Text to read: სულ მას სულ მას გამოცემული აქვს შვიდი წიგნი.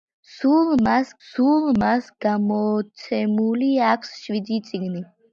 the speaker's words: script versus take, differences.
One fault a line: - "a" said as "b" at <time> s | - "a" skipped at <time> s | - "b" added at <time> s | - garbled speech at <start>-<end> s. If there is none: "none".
none